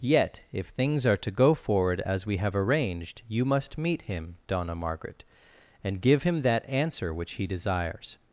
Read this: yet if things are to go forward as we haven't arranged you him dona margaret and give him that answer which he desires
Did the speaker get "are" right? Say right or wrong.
right